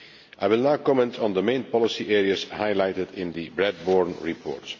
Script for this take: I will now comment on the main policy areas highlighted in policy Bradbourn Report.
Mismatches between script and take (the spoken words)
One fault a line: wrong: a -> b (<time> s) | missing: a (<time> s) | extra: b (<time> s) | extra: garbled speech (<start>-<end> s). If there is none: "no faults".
wrong: policy -> the (3.3 s)